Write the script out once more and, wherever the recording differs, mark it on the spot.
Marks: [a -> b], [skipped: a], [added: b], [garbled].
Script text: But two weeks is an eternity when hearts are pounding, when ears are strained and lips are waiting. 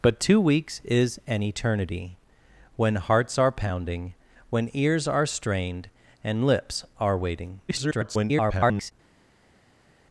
But two weeks is an eternity when hearts are pounding, when ears are strained and lips are waiting. [garbled]